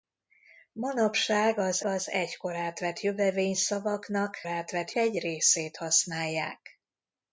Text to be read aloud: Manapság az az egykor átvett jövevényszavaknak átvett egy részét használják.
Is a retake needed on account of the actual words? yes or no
no